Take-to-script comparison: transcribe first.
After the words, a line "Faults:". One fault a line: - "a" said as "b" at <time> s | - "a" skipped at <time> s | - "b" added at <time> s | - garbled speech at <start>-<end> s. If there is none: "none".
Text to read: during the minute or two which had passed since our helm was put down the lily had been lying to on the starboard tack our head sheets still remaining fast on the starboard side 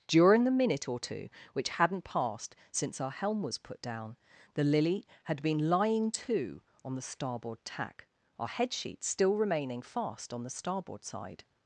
during the minute or two which hadn't passed since our helm was put down the lily had been lying to on the starboard tack our head sheets still remaining fast on the starboard side
Faults:
- "had" said as "hadn't" at 1.7 s